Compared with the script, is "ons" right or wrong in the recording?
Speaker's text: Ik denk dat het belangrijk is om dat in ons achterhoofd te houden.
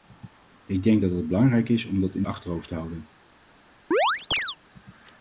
wrong